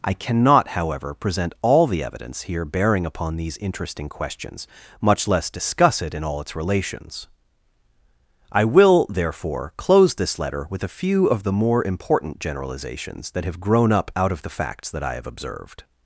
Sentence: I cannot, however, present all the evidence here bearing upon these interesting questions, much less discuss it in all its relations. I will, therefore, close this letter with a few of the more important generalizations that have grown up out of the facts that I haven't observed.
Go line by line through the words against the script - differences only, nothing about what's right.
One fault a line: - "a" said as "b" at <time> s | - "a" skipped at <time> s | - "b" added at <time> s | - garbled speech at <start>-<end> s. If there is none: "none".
- "haven't" said as "have" at 15.2 s